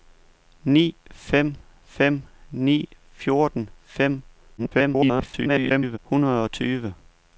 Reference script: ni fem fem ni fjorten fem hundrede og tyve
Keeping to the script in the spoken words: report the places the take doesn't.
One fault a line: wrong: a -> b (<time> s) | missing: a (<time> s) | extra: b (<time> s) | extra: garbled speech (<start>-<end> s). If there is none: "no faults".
extra: garbled speech (4.6-6.0 s)